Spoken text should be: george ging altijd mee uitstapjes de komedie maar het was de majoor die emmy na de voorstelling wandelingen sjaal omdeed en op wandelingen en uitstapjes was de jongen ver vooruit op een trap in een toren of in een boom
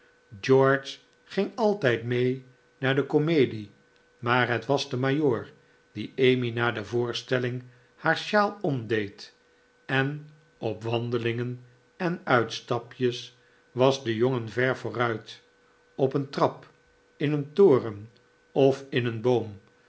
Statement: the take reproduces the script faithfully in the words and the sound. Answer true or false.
false